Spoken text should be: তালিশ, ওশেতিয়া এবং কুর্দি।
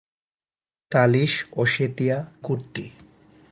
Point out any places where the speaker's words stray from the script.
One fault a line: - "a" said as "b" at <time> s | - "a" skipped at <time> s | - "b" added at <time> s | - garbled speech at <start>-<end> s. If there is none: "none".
- "এবং" skipped at 2.2 s